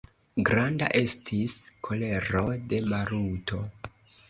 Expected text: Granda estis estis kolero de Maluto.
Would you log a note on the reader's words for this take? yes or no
yes